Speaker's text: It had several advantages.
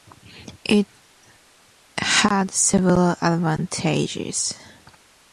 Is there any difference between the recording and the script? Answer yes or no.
no